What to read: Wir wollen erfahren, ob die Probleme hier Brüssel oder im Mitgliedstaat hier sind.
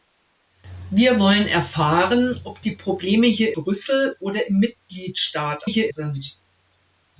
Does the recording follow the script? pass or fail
pass